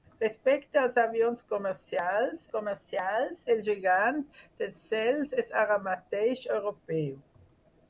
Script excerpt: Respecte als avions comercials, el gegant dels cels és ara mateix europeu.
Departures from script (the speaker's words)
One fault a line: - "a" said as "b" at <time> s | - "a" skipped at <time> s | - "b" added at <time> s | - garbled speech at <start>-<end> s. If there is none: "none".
- "comercials" added at 2.5 s